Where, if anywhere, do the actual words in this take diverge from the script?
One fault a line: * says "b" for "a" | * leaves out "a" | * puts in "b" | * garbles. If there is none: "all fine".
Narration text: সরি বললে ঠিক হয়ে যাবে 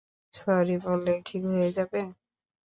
all fine